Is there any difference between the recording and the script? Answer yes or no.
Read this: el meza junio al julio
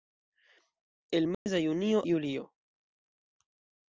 yes